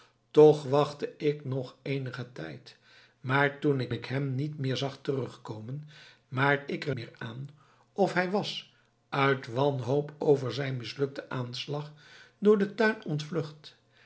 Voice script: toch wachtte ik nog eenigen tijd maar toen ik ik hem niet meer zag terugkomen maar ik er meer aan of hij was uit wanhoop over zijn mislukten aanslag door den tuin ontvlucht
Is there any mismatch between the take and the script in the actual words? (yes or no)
no